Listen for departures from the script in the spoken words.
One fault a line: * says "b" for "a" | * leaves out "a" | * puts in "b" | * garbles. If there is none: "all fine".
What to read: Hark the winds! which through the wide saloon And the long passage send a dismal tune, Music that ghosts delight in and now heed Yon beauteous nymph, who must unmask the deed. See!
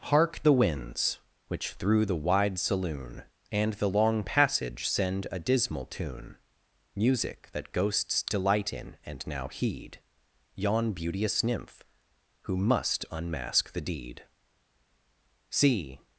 all fine